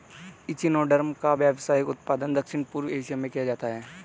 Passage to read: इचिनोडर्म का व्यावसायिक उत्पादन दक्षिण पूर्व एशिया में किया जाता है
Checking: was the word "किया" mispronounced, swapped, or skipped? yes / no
no